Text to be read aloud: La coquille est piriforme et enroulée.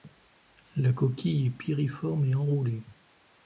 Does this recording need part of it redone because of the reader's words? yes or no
no